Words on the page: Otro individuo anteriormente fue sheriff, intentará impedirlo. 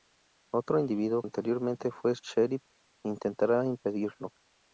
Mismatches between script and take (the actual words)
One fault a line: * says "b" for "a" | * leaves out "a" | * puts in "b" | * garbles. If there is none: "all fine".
all fine